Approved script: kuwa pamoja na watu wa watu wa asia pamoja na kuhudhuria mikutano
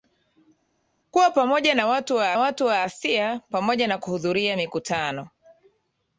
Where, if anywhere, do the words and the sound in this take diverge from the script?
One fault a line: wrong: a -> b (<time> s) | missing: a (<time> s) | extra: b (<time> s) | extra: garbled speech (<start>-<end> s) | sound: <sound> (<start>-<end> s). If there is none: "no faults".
no faults